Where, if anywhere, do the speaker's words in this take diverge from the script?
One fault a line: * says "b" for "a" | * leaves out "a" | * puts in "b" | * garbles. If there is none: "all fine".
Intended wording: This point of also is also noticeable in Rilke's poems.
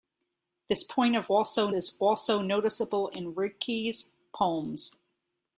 all fine